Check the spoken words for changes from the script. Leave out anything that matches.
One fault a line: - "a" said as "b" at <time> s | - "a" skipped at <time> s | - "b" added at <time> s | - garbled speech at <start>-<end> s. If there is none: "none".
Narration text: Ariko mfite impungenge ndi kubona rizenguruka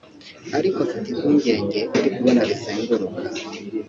none